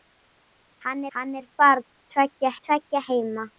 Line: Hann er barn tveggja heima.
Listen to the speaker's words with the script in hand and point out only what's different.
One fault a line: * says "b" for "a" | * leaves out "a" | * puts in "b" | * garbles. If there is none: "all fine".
* puts in "hann"
* puts in "tveggja"